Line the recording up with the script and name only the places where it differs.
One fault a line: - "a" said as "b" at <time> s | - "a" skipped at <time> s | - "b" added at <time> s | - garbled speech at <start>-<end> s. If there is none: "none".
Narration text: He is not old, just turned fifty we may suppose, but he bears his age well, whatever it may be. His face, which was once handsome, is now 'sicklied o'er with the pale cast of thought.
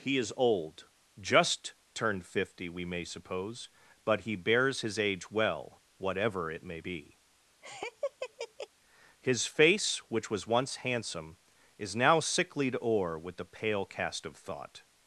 - "not" skipped at 0.3 s